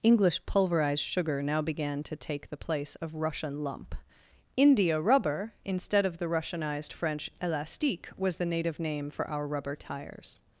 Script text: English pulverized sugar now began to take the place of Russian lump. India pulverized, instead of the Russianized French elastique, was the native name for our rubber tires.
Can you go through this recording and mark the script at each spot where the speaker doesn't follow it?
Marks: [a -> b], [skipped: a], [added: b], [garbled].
English pulverized sugar now began to take the place of Russian lump. India [pulverized, -> rubber] instead of the Russianized French elastique, was the native name for our rubber tires.